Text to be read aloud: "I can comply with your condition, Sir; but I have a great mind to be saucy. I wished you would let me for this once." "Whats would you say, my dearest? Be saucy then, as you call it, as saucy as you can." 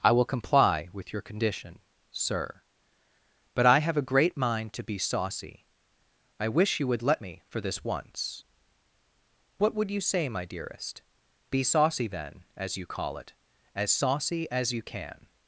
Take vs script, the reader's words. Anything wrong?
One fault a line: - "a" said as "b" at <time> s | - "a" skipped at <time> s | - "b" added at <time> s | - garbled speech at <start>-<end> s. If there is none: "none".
- "can" said as "will" at 0.1 s
- "wished" said as "wish" at 6.5 s
- "Whats" said as "What" at 9.6 s